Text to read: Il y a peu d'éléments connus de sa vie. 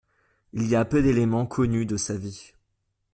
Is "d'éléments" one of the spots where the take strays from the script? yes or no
no